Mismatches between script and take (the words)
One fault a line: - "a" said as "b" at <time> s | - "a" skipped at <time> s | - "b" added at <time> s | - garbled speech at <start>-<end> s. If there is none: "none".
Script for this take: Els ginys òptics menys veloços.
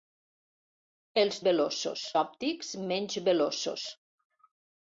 - "ginys" said as "veloços" at 1.4 s